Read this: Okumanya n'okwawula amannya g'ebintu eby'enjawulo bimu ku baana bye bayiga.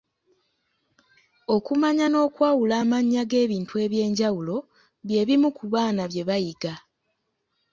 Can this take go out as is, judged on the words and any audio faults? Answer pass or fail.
fail